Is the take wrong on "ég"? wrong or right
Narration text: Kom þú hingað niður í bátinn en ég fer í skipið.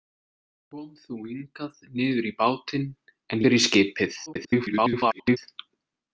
wrong